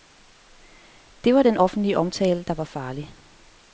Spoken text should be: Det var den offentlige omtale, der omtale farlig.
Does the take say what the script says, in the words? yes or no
no